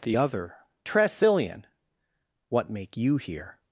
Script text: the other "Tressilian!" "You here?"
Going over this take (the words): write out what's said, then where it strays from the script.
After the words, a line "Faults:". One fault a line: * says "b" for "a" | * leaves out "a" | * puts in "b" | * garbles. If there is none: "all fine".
the other "Tressilian!" "What make you here?"
Faults:
* puts in "What make"